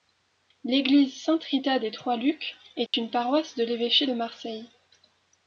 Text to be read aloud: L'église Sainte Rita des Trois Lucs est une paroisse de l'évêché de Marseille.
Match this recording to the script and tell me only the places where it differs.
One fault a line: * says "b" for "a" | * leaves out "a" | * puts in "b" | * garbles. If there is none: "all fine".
all fine